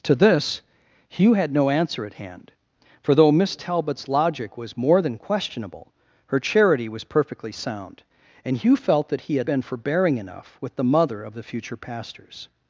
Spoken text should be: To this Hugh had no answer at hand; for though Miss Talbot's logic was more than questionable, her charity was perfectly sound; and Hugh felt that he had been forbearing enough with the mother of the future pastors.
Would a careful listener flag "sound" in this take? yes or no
no